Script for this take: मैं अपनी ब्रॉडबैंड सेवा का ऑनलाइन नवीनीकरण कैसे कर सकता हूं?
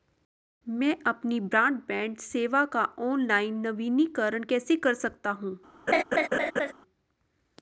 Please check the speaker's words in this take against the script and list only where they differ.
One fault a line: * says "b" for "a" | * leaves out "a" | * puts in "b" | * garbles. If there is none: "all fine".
all fine